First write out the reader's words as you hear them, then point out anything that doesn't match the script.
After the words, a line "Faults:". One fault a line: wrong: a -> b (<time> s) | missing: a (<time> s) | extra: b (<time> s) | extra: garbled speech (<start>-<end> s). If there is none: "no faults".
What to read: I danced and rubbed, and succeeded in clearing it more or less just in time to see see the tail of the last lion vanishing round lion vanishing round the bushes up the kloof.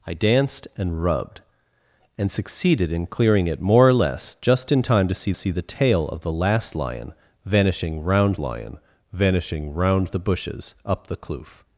I danced and rubbed, and succeeded in clearing it more or less just in time to see see the tail of the last lion vanishing round lion vanishing round the bushes up the kloof.
Faults:
no faults